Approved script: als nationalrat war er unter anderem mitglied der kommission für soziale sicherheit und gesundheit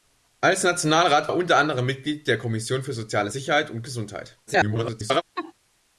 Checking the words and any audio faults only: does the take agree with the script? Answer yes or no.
no